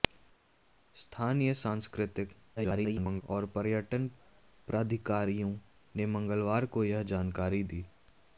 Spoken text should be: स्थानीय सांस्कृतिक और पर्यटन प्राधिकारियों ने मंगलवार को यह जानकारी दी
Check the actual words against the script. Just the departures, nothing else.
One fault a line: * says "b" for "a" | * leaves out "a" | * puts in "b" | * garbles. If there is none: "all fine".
* garbles